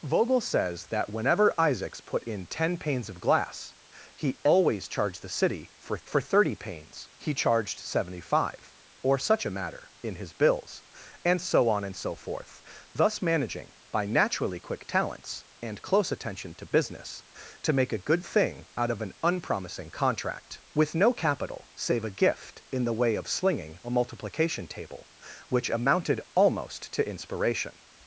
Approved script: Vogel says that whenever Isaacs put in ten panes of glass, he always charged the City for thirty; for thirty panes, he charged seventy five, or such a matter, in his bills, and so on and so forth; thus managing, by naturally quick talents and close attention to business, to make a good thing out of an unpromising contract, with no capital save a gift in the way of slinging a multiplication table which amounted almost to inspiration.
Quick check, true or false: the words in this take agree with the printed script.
false